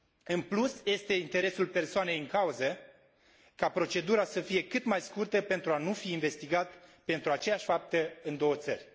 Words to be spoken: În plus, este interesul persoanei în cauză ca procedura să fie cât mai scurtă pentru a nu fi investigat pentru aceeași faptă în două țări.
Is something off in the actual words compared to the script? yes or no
no